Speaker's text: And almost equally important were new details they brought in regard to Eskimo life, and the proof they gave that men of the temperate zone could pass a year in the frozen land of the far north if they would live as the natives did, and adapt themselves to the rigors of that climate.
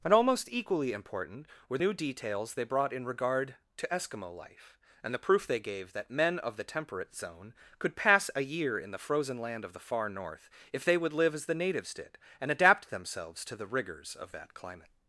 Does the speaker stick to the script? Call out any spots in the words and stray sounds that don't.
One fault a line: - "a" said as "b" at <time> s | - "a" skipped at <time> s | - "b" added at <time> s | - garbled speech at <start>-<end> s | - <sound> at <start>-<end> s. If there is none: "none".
none